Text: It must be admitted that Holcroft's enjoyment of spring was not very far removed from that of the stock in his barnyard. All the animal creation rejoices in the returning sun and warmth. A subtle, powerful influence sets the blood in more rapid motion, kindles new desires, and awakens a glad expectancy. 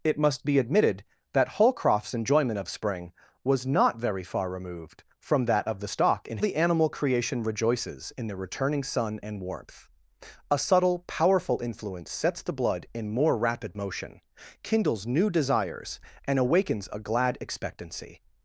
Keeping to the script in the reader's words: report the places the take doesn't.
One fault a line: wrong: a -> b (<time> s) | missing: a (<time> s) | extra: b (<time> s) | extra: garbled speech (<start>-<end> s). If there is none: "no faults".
missing: his barnyard All (6.4 s)